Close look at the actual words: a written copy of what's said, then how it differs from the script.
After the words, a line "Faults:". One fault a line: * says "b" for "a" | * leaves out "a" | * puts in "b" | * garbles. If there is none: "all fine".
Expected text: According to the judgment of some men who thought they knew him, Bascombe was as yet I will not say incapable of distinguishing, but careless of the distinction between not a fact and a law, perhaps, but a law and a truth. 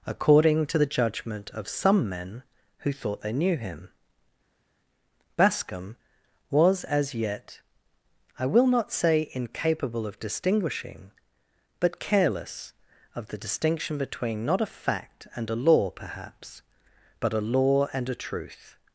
According to the judgment of some men who thought they knew him, Bascombe was as yet I will not say incapable of distinguishing, but careless of the distinction between not a fact and a law, perhaps, but a law and a truth.
Faults:
all fine